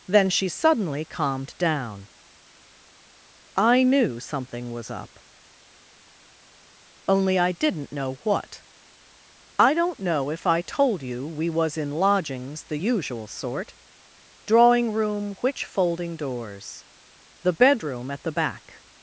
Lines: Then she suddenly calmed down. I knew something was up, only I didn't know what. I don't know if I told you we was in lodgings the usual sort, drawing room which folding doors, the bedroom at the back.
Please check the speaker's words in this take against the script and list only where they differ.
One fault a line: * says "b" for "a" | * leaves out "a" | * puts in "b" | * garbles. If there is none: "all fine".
all fine